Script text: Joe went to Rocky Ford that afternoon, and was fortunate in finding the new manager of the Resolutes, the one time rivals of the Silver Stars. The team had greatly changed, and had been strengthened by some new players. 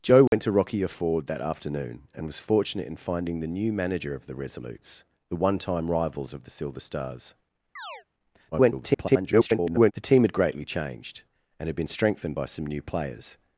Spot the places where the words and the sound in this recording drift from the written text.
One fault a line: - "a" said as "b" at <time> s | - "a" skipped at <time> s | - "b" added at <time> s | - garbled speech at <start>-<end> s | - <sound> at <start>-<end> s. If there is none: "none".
- dropout at 0.3-0.3 s
- chirp at 7.8-8.0 s
- garbled speech at 8.5-9.9 s